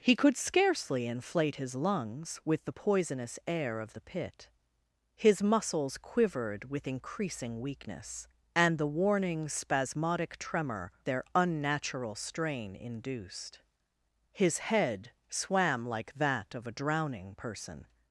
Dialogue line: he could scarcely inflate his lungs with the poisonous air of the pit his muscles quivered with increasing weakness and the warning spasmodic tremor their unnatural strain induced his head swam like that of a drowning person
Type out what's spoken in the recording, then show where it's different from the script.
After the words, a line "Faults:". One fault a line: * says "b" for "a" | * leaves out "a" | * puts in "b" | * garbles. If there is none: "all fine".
he could scarcely inflate his lungs with the poisonous air of the pit his muscles quivered with increasing weakness and the warning spasmodic tremor their unnatural strain induced his head swam like that of a drowning person
Faults:
all fine